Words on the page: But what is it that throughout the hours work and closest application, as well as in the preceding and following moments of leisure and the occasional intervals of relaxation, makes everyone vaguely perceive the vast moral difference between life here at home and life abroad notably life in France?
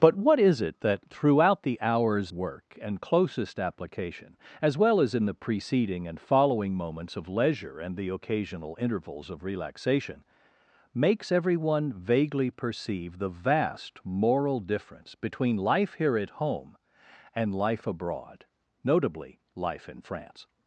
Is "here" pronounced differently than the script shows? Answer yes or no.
no